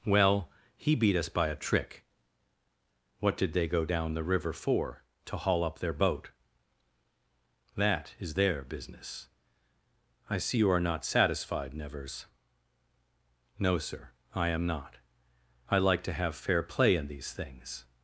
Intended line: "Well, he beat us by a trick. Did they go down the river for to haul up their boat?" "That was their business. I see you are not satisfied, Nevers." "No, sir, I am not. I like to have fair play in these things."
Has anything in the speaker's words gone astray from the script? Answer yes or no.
yes